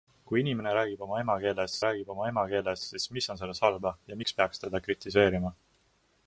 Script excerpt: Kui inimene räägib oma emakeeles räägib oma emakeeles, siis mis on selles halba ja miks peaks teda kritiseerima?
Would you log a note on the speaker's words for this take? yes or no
no